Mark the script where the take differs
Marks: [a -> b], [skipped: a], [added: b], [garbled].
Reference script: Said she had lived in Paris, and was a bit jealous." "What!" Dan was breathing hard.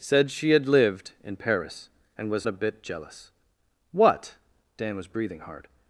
Said she had lived in Paris, and was a bit jealous." "What!" Dan was breathing hard.